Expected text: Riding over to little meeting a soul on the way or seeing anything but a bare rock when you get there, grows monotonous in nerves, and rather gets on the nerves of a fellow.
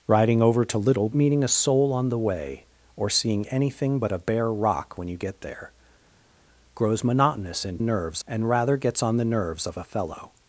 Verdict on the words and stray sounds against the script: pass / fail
pass